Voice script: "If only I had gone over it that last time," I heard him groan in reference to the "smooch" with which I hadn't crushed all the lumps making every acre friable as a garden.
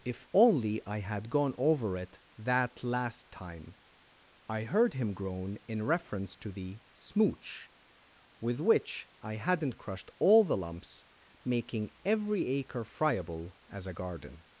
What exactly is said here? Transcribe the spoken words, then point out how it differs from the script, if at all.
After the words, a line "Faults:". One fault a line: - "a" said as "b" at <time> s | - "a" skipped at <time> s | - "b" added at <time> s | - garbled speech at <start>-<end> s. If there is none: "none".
"If only I had gone over it that last time," I heard him groan in reference to the "smooch" with which I hadn't crushed all the lumps making every acre friable as a garden.
Faults:
none